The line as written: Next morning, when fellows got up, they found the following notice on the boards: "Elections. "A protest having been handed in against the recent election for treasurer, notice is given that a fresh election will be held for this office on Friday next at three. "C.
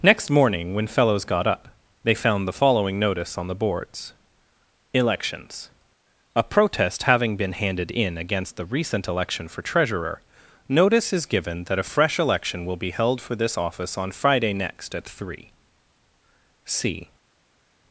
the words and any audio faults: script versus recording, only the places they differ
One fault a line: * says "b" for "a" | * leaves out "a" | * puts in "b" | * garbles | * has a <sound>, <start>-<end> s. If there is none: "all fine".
all fine